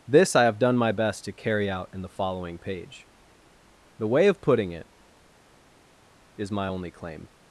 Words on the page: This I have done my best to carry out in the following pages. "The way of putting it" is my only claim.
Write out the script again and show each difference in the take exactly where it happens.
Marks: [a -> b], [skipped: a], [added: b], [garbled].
This I have done my best to carry out in the following [pages. -> page] "The way of putting it" is my only claim.